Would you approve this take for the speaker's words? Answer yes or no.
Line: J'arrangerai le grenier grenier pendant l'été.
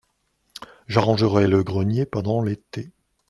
no